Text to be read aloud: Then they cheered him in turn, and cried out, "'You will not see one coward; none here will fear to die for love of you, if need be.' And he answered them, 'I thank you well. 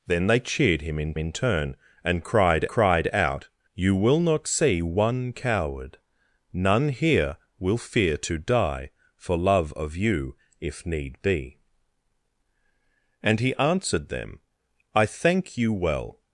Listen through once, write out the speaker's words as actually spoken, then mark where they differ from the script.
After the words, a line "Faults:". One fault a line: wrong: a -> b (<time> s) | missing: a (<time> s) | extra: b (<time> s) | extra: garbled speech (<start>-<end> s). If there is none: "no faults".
Then they cheered him in in turn, and cried cried out, "'You will not see one coward; none here will fear to die for love of you, if need be.' And he answered them, 'I thank you well.
Faults:
extra: in (1.2 s)
extra: cried (2.7 s)